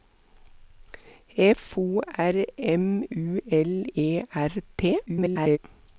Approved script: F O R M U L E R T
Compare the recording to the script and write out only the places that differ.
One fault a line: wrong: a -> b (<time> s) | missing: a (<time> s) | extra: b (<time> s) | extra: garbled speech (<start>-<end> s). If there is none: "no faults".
extra: garbled speech (5.1-5.6 s)